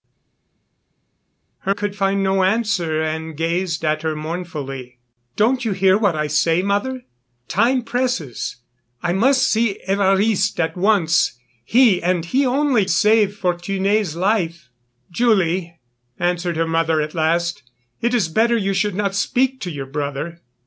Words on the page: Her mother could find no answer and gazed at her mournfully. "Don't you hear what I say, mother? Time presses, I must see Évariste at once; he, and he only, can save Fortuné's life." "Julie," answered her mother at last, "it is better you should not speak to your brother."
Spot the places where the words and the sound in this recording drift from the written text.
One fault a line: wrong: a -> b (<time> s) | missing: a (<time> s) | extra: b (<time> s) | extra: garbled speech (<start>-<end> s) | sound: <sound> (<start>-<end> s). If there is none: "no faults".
missing: mother (1.7 s)
missing: can (12.8 s)